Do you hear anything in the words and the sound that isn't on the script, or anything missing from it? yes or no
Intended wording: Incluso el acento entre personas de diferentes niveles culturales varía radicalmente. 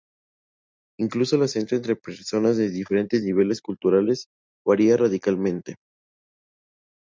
no